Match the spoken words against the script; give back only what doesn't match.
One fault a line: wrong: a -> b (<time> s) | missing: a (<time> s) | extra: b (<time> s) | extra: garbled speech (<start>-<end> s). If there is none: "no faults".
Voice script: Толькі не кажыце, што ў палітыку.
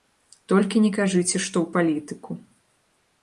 no faults